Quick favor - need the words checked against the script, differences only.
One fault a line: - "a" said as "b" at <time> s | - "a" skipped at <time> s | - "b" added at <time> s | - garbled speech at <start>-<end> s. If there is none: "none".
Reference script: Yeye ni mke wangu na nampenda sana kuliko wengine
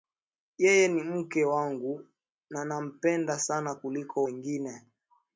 none